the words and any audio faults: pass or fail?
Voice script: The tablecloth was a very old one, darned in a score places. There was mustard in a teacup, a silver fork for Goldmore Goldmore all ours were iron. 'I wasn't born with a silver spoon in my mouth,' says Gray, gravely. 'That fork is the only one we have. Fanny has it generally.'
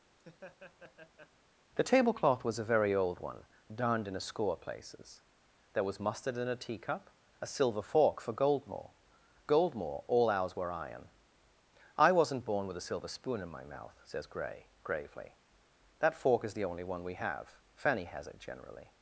fail